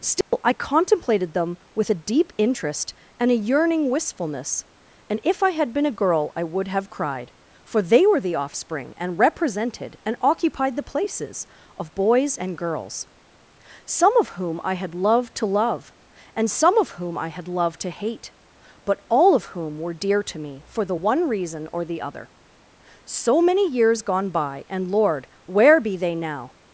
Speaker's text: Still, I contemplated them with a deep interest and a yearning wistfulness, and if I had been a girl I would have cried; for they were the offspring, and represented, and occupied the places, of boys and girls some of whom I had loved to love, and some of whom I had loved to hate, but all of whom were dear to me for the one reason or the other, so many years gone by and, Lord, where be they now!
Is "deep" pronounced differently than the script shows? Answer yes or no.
no